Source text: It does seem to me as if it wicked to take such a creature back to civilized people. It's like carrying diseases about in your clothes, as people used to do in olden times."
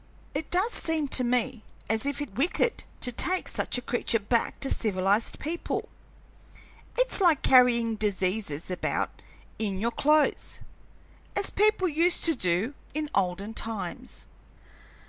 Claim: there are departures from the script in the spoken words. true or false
false